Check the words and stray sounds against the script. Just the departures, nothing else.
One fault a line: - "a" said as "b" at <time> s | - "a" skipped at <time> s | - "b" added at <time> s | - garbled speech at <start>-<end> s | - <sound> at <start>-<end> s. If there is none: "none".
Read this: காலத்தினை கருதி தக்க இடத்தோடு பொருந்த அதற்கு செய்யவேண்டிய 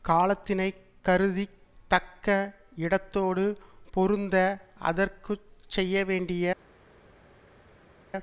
none